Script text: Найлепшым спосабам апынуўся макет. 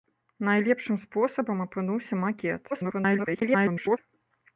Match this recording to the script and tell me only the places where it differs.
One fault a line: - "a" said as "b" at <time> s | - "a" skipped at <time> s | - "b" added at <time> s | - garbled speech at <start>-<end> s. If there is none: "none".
- garbled speech at 2.7-4.0 s